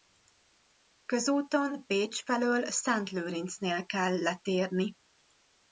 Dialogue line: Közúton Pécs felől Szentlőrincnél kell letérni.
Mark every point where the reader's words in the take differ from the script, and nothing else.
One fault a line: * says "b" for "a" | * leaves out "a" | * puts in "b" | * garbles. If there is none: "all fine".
all fine